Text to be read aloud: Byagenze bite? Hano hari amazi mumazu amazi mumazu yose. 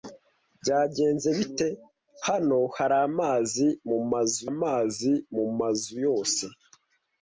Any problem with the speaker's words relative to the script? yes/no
no